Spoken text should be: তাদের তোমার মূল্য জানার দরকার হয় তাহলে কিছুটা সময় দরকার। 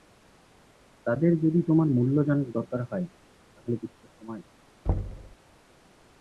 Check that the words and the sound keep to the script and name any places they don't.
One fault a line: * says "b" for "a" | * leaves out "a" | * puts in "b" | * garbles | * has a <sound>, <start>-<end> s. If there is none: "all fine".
* puts in "যদি"
* has a thud, 4.9-5.4 s